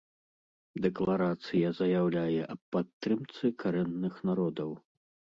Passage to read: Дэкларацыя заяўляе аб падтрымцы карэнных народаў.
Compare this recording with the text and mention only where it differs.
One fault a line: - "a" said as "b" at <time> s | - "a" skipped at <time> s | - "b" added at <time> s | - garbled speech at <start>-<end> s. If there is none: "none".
none